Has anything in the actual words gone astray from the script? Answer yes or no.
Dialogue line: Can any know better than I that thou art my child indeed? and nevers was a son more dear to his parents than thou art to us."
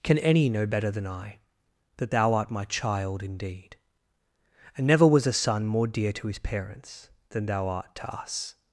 yes